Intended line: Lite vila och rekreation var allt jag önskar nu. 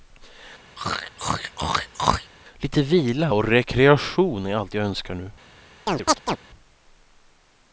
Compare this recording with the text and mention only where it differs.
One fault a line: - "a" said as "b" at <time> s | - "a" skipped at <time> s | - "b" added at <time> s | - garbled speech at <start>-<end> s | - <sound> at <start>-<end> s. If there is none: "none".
- throat clearing at 0.8-2.3 s
- "var" said as "är" at 4.5 s
- chirp at 5.9-6.4 s